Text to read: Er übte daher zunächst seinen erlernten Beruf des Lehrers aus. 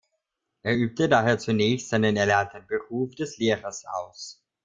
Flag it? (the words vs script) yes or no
no